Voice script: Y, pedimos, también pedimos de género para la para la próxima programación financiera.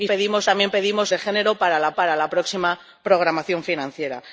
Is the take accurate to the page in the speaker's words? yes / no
yes